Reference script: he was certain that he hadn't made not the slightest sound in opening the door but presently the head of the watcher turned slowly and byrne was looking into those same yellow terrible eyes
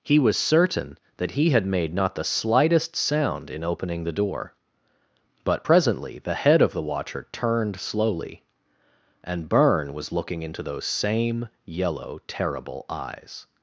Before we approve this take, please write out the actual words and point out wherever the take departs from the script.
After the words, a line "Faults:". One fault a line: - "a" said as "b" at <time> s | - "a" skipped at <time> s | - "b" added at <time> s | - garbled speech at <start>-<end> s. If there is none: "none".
he was certain that he had made not the slightest sound in opening the door but presently the head of the watcher turned slowly and byrne was looking into those same yellow terrible eyes
Faults:
- "hadn't" said as "had" at 1.5 s